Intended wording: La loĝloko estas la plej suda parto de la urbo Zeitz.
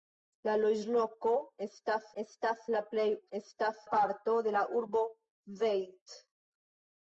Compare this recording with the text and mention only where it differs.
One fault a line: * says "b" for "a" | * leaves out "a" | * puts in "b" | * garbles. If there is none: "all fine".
* puts in "estas"
* says "estas" for "suda"